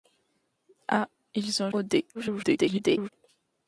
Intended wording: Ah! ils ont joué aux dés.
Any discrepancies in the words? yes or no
yes